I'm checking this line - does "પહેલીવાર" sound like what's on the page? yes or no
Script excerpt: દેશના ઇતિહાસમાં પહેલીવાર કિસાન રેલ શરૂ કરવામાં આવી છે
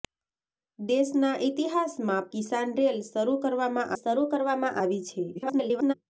no